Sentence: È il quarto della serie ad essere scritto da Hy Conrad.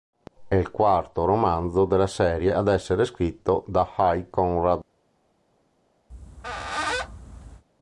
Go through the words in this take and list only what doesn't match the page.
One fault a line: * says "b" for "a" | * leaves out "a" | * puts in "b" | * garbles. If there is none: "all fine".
* puts in "romanzo"